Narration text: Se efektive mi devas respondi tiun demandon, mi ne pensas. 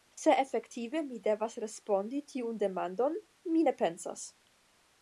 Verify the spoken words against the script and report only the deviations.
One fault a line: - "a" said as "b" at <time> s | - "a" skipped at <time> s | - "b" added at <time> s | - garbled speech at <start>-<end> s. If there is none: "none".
none